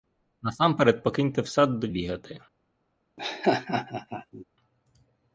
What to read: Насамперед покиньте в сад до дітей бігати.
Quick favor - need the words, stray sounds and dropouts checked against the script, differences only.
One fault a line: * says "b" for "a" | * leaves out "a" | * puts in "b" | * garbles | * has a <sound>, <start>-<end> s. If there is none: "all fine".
* leaves out "дітей"
* has a laugh, 3.2-4.5 s